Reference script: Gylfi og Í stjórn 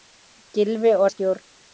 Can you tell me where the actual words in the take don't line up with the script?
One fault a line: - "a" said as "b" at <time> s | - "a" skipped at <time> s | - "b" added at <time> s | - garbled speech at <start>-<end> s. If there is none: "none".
none